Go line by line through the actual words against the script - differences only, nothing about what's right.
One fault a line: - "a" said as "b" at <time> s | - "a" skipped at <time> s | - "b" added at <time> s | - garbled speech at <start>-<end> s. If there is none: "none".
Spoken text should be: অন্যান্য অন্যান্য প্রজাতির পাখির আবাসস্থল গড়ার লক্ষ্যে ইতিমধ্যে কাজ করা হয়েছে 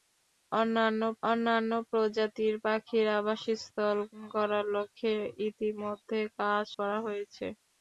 none